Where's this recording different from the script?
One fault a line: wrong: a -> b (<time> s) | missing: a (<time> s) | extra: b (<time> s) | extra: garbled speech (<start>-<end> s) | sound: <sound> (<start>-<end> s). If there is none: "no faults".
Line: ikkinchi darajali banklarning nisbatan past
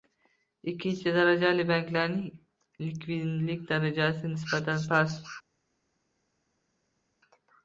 extra: likvidlik darajasi (2.9 s)